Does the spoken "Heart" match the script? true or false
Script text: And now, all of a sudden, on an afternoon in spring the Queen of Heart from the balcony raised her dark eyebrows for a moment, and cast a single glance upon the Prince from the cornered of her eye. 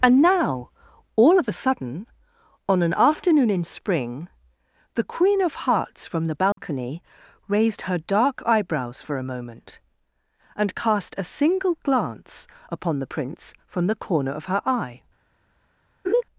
false